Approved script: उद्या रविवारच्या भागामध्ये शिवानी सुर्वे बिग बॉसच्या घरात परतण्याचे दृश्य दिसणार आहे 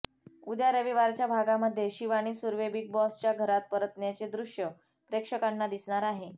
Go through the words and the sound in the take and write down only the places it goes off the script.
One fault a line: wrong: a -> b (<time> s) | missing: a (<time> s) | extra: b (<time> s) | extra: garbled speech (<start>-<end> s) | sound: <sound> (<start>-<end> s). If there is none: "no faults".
extra: प्रेक्षकांना (5.1 s)